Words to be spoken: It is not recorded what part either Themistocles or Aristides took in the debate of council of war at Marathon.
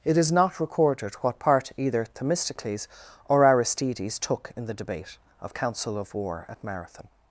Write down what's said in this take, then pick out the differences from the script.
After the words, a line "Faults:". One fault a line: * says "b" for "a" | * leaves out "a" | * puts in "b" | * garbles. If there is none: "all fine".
It is not recorded what part either Themistocles or Aristides took in the debate of council of war at Marathon.
Faults:
all fine